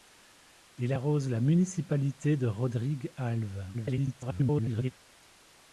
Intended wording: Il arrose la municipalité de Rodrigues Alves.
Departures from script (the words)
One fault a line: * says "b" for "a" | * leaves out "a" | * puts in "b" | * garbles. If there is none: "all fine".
* garbles